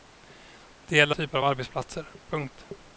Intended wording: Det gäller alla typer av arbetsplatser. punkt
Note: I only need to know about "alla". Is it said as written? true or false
false